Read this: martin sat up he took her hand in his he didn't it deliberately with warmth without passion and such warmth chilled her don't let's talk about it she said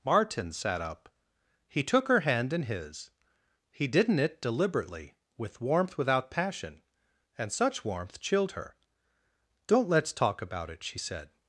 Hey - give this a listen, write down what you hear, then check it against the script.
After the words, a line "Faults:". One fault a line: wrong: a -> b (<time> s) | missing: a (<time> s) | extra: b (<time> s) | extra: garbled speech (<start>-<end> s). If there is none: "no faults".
martin sat up he took her hand in his he didn't it deliberately with warmth without passion and such warmth chilled her don't let's talk about it she said
Faults:
no faults